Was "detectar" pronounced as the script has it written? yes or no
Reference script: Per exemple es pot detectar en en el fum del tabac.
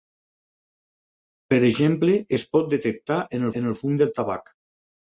yes